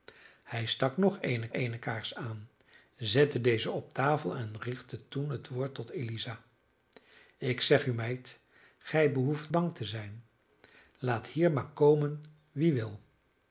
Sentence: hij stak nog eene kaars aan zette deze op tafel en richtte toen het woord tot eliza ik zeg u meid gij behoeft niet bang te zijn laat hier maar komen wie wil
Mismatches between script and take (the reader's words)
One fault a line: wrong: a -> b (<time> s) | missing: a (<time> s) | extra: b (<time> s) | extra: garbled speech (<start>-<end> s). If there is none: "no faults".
extra: eene (1.5 s)
missing: niet (9.5 s)